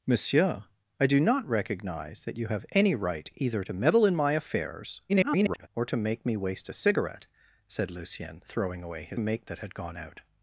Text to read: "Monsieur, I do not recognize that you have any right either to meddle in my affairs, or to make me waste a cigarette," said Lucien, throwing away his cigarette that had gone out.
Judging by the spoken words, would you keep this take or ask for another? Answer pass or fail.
fail